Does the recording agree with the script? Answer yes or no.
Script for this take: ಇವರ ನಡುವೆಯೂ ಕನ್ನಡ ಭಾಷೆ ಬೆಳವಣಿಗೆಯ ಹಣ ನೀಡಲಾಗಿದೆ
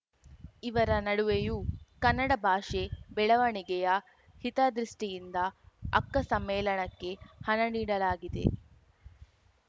no